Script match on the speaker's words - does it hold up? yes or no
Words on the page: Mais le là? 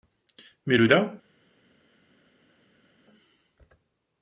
yes